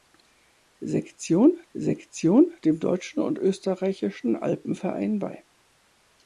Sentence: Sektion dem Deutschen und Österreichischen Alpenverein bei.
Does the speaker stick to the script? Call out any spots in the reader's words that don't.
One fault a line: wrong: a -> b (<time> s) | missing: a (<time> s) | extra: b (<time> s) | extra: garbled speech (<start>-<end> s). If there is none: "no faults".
extra: sektion (1.7 s)